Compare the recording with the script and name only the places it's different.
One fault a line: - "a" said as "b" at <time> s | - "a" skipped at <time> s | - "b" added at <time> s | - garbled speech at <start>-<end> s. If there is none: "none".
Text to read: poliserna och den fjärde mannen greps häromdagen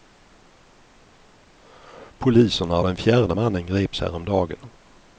none